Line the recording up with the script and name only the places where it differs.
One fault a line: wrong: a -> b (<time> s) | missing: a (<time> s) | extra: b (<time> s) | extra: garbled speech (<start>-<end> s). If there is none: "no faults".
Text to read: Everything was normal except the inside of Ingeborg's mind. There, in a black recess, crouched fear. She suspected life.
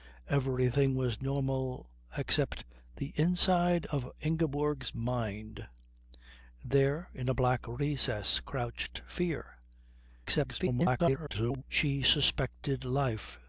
extra: garbled speech (10.2-11.6 s)